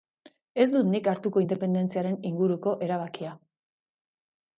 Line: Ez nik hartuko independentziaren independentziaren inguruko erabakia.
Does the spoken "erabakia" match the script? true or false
true